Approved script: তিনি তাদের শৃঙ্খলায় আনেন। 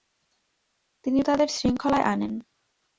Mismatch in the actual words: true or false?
false